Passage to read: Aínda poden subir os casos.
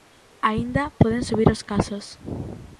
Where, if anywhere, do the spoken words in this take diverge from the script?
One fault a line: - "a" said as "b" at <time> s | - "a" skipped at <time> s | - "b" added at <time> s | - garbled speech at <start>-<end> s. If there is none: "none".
none